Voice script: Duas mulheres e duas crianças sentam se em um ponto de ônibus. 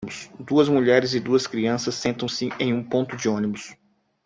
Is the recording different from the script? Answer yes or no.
no